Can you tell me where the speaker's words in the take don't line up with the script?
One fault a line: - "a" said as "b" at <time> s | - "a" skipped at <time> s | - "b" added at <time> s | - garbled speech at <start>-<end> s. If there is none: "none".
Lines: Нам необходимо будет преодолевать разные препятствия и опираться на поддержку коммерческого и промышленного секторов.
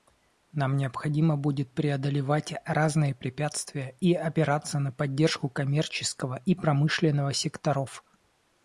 none